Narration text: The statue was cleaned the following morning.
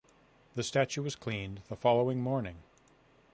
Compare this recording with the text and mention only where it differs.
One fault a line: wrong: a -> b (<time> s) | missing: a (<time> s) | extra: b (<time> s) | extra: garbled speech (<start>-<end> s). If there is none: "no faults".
no faults